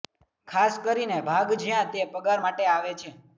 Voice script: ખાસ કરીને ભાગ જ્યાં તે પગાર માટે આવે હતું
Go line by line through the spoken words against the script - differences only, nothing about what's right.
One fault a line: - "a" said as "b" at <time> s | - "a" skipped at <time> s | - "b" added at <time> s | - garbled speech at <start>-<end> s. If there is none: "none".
- "હતું" said as "છે" at 3.0 s